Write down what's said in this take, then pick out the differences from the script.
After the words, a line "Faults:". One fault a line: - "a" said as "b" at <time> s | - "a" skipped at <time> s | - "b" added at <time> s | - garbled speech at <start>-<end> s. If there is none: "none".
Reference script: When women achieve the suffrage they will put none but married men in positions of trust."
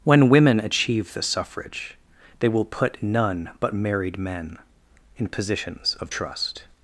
When women achieve the suffrage they will put none but married men in positions of trust."
Faults:
none